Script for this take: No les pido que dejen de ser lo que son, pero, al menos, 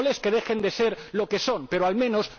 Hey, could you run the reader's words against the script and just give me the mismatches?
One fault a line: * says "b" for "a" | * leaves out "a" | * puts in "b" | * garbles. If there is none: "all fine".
* leaves out "pido"